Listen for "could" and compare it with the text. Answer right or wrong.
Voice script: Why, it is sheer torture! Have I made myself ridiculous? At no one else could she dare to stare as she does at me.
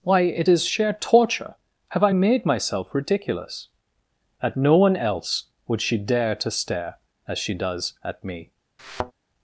wrong